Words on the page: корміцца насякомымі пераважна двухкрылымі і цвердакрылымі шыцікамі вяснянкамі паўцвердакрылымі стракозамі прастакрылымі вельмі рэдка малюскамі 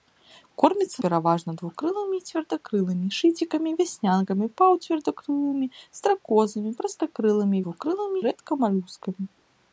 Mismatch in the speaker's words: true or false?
true